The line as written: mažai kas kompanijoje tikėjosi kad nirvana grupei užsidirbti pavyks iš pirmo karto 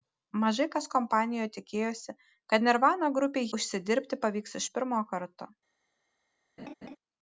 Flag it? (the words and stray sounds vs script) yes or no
yes